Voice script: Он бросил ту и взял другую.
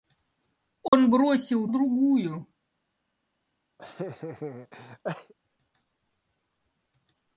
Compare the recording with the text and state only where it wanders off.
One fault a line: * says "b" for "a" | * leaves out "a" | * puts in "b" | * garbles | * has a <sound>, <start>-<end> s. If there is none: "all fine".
* has a dropout, 0.9-0.9 s
* leaves out "ту и взял"
* has a laugh, 3.8-5.3 s